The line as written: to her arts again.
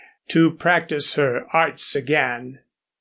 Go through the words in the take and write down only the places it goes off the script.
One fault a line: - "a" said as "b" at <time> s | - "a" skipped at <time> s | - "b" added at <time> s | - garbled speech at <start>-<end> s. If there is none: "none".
- "practice" added at 0.5 s